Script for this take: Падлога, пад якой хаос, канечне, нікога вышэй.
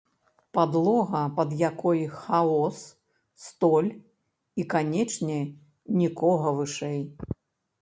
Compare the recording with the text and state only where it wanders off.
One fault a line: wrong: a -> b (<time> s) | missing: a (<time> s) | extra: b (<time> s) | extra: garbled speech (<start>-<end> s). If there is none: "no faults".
extra: столь і (3.5 s)